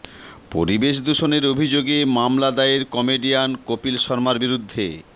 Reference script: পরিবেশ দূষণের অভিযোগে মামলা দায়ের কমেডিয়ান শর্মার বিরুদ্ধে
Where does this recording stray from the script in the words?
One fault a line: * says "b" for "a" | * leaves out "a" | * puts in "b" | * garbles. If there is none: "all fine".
* puts in "কপিল"